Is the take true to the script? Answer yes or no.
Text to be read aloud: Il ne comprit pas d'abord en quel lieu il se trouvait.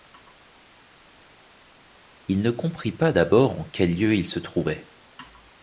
yes